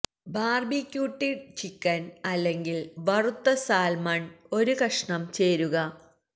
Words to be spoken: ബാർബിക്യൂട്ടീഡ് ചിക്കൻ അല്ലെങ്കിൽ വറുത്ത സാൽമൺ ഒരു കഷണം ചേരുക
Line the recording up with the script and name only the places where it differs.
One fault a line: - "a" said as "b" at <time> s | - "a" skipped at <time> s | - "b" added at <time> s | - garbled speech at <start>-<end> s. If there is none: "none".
none